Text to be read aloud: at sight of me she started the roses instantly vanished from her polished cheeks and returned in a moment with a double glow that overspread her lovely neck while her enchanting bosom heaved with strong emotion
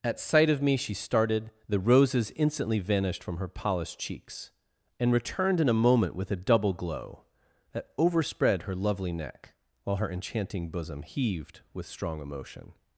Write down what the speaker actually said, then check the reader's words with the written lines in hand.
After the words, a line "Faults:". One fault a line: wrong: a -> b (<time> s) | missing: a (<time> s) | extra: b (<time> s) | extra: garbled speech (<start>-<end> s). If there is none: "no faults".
at sight of me she started the roses instantly vanished from her polished cheeks and returned in a moment with a double glow that overspread her lovely neck while her enchanting bosom heaved with strong emotion
Faults:
no faults